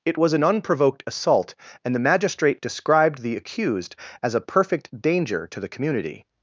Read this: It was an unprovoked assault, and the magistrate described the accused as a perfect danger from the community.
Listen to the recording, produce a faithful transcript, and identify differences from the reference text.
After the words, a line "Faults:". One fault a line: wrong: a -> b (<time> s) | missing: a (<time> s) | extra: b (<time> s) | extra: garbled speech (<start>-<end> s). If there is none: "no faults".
It was an unprovoked assault, and the magistrate described the accused as a perfect danger to the community.
Faults:
wrong: from -> to (5.5 s)